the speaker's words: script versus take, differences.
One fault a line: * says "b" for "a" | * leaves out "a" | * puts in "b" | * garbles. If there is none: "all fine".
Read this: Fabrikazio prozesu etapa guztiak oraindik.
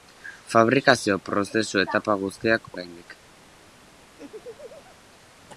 all fine